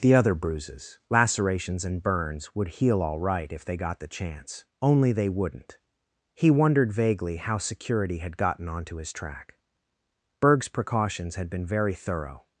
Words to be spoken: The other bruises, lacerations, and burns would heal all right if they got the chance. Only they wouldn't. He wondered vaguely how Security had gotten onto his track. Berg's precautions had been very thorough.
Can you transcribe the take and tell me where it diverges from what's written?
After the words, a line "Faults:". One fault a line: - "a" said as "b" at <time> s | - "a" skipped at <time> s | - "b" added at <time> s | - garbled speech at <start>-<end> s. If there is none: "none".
The other bruises, lacerations, and burns would heal all right if they got the chance. Only they wouldn't. He wondered vaguely how Security had gotten onto his track. Berg's precautions had been very thorough.
Faults:
none